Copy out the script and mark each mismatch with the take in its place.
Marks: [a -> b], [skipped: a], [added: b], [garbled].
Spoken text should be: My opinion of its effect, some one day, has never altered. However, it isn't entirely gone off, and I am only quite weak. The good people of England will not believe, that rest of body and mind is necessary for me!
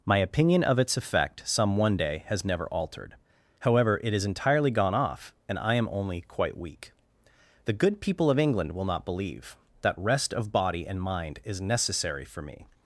My opinion of its effect, some one day, has never altered. However, it [isn't -> is] entirely gone off, and I am only quite weak. The good people of England will not believe, that rest of body and mind is necessary for me!